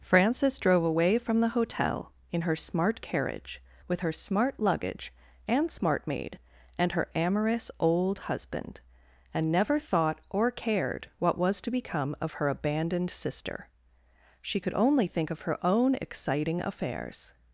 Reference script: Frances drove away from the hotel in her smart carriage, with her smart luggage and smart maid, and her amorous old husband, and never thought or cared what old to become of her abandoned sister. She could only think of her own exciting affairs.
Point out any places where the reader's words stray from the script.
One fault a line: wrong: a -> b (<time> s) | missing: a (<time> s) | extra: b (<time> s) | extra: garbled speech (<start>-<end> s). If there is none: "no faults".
wrong: old -> was (11.4 s)